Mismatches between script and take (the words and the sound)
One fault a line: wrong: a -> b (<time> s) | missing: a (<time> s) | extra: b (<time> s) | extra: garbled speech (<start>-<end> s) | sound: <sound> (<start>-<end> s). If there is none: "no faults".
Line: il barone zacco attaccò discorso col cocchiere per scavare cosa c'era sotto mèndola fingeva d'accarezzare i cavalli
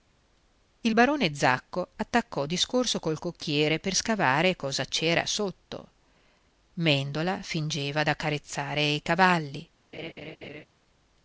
sound: laugh (9.9-10.7 s)